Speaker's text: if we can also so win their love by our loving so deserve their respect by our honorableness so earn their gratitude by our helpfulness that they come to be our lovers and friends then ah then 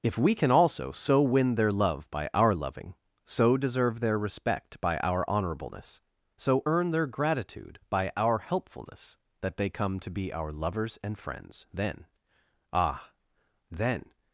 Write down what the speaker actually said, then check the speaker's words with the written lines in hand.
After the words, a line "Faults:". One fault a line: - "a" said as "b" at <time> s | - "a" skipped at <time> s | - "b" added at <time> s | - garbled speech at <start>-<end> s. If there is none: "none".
if we can also so win their love by our loving so deserve their respect by our honorableness so earn their gratitude by our helpfulness that they come to be our lovers and friends then ah then
Faults:
none